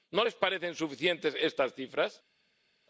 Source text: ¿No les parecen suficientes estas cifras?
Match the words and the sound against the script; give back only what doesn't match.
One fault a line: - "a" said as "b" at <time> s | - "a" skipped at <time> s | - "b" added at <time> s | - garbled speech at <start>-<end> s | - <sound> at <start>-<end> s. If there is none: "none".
none